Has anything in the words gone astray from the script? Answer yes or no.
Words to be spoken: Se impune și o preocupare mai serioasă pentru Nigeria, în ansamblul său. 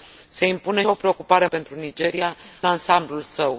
yes